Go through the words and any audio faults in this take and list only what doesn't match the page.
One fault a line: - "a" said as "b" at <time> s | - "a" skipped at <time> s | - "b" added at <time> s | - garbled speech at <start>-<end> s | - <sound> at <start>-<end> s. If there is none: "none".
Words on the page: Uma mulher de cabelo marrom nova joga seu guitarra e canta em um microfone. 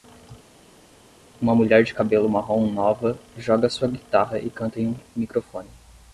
- "seu" said as "sua" at 3.7 s